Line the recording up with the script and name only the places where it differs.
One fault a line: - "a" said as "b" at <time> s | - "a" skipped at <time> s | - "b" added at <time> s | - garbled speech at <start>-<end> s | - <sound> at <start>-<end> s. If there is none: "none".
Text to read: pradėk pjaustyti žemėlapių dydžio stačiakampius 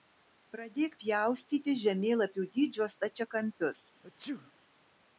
- sneeze at 4.0-4.5 s